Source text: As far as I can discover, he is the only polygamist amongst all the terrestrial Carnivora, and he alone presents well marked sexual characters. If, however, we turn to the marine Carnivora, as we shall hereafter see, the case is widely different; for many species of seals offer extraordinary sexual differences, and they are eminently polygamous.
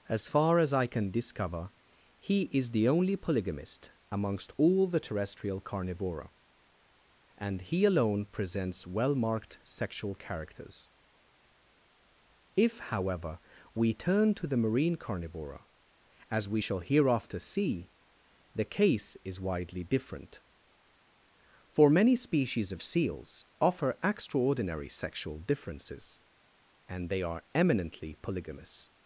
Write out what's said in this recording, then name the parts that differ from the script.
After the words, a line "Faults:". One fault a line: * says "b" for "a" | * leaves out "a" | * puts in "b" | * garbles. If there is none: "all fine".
As far as I can discover, he is the only polygamist amongst all the terrestrial Carnivora, and he alone presents well marked sexual characters. If, however, we turn to the marine Carnivora, as we shall hereafter see, the case is widely different; for many species of seals offer extraordinary sexual differences, and they are eminently polygamous.
Faults:
all fine